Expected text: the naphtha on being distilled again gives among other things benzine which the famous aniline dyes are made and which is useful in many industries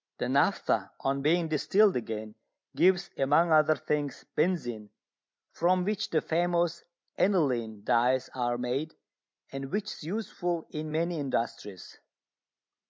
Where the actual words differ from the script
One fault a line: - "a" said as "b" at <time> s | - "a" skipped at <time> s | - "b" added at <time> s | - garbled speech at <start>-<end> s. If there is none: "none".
- "from" added at 5.5 s